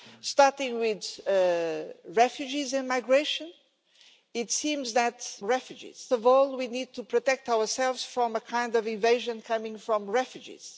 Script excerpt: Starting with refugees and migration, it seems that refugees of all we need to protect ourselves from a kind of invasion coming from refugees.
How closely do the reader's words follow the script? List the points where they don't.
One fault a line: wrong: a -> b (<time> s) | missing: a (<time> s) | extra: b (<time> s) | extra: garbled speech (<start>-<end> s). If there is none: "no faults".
no faults